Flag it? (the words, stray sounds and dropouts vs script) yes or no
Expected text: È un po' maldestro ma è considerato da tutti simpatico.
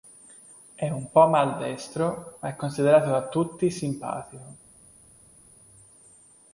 no